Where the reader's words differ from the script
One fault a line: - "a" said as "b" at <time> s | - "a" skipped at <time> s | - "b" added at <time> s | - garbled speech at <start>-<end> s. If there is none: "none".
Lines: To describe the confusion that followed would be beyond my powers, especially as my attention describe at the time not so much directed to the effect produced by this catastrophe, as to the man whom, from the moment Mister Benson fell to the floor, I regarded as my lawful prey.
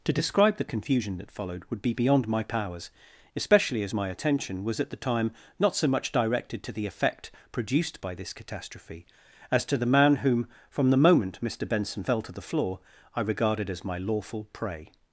- "describe" said as "was" at 4.6 s